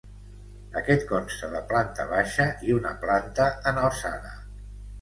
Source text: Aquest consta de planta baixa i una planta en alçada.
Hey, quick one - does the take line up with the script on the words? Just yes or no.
yes